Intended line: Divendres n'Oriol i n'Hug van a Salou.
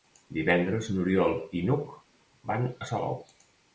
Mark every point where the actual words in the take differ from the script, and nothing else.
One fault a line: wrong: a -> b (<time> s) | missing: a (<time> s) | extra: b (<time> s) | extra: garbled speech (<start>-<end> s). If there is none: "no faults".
no faults